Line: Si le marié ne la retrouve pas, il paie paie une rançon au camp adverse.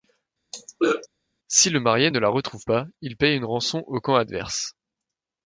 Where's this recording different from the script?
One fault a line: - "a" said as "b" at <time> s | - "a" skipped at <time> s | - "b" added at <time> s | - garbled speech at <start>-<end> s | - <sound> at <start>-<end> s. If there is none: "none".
- throat clearing at 0.5-1.1 s
- "paie" skipped at 3.4 s